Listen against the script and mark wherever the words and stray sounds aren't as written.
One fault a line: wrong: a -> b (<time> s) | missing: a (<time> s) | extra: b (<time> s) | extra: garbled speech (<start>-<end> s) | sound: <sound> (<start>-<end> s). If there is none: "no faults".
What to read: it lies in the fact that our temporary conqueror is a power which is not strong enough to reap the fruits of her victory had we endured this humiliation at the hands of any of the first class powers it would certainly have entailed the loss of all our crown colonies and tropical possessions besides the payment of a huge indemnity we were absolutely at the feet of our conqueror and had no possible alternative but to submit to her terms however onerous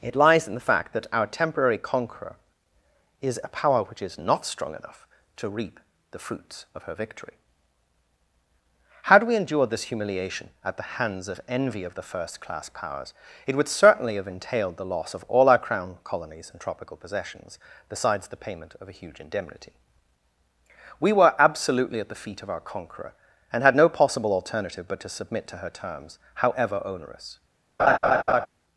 wrong: any -> envy (11.5 s)
sound: laugh (27.8-28.5 s)